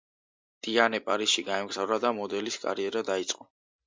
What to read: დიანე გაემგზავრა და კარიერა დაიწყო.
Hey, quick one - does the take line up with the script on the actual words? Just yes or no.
no